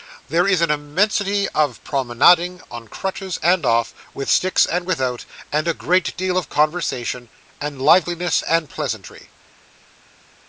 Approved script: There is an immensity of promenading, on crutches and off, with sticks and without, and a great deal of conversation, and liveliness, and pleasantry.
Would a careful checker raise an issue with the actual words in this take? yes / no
no